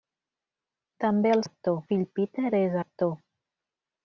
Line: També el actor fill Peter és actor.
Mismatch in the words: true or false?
false